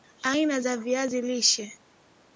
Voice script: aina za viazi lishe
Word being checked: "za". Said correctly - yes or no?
yes